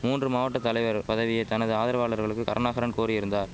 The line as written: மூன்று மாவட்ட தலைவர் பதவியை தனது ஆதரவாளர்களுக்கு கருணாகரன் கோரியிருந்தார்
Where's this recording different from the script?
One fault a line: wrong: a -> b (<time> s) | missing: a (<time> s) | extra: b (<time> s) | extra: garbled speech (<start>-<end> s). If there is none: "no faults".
no faults